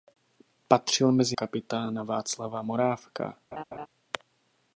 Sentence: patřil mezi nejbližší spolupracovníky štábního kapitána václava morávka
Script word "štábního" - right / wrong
wrong